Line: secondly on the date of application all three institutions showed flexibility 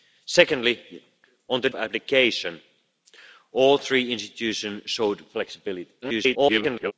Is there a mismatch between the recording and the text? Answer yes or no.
yes